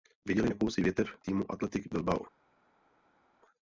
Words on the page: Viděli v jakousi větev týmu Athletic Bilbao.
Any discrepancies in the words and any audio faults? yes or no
no